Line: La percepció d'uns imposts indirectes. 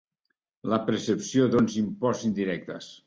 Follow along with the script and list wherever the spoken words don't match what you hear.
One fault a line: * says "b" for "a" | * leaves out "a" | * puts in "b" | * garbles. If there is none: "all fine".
all fine